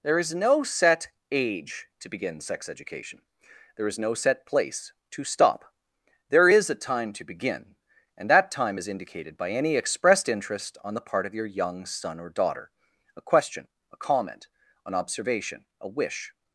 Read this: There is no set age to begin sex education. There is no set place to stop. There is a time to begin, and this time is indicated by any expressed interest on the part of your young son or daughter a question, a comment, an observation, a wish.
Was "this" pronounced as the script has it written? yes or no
no